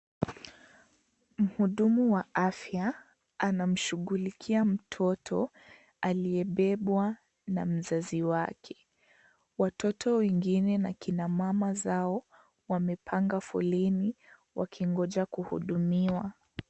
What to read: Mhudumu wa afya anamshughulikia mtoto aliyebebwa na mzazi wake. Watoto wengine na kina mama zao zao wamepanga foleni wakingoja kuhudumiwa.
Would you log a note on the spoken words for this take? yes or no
yes